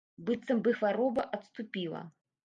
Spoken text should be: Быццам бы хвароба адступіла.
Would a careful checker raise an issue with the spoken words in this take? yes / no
no